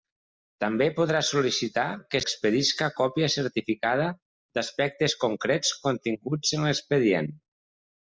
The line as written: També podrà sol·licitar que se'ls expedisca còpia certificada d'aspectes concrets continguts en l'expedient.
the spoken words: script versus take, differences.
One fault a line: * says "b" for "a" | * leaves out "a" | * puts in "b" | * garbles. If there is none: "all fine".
* leaves out "se'ls"